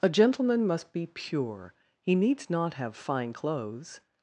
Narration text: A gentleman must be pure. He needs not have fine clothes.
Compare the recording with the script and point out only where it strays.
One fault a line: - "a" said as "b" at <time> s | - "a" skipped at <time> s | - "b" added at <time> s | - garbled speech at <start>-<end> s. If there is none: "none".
none